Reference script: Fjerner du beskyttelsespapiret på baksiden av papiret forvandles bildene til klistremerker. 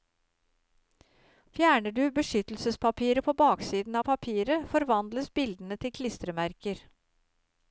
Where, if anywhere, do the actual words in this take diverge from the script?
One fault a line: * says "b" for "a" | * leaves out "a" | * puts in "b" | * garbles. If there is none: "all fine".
all fine